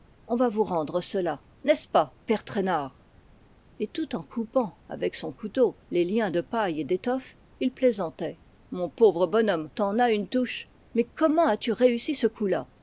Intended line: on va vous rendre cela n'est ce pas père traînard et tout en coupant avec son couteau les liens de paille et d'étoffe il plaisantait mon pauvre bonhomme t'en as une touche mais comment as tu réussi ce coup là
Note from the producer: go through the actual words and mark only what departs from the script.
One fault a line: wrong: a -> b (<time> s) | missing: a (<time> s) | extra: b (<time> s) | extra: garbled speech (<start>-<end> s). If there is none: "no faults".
no faults